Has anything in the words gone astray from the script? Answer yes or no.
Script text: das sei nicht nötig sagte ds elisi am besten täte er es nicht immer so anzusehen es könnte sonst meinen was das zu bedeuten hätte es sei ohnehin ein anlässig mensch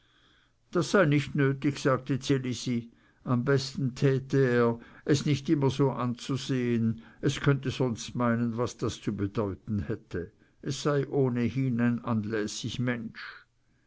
no